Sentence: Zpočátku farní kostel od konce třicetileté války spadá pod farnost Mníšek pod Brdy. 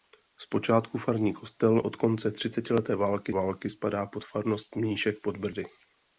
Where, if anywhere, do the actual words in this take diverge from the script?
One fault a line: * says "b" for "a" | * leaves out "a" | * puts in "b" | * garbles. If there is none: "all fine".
* puts in "války"